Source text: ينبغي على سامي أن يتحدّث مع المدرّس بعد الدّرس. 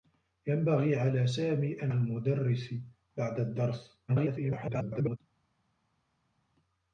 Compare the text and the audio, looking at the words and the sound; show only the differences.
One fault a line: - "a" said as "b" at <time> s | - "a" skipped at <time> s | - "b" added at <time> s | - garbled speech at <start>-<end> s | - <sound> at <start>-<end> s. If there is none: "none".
- "يتحدّث مع" skipped at 1.9 s
- garbled speech at 4.1-5.2 s